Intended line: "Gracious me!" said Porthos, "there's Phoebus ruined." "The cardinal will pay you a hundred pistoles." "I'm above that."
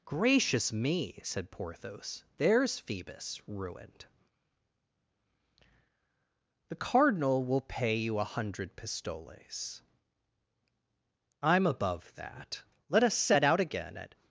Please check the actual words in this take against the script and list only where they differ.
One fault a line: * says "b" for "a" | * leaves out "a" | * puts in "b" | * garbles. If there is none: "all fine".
* puts in "Let us set out again at"